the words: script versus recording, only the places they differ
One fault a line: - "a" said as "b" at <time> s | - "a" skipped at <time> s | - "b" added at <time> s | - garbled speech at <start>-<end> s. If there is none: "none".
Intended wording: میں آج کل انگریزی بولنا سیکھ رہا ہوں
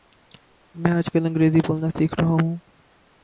none